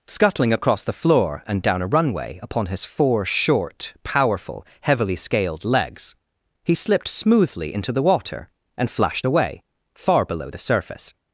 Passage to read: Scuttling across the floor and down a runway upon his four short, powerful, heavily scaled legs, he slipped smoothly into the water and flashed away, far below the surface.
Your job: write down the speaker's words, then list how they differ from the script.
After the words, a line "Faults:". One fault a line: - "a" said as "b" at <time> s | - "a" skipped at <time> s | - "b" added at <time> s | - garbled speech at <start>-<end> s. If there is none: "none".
Scuttling across the floor and down a runway upon his four short, powerful, heavily scaled legs, he slipped smoothly into the water and flashed away, far below the surface.
Faults:
none